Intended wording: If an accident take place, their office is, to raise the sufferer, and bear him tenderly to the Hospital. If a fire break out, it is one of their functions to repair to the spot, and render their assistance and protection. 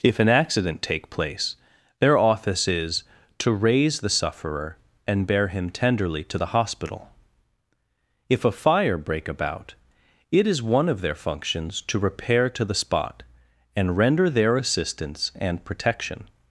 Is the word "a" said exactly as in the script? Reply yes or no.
yes